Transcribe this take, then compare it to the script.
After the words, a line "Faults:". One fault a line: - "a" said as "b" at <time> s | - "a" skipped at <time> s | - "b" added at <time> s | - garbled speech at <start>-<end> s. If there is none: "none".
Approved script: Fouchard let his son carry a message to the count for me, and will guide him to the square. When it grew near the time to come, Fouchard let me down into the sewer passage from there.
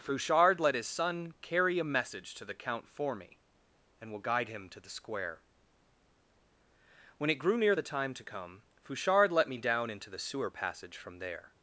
Fouchard let his son carry a message to the count for me, and will guide him to the square. When it grew near the time to come, Fouchard let me down into the sewer passage from there.
Faults:
none